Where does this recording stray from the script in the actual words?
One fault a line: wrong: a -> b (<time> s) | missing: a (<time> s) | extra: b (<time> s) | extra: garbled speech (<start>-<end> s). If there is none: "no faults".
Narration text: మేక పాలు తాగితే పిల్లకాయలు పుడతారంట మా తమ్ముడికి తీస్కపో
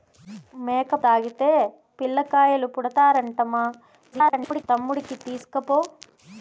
missing: పాలు (0.9 s)
extra: garbled speech (4.1-4.6 s)